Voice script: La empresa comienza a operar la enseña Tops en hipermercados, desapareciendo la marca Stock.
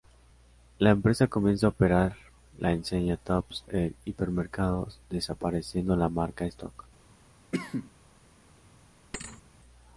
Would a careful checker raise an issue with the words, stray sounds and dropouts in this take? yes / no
yes